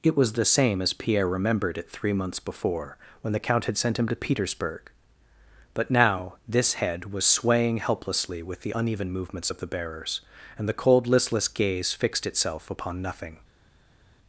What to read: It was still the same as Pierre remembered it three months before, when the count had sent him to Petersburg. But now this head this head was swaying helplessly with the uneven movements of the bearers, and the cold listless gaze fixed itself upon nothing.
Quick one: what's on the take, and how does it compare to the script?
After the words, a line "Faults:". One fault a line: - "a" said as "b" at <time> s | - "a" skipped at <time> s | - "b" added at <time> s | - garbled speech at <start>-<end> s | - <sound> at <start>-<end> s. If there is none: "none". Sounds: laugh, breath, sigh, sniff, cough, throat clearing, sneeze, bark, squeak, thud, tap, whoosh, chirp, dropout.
It was the same as Pierre remembered it three months before, when the count had sent him to Petersburg. But now this head was swaying helplessly with the uneven movements of the bearers, and the cold listless gaze fixed itself upon nothing.
Faults:
- "still" skipped at 0.3 s
- "this head" skipped at 7.1 s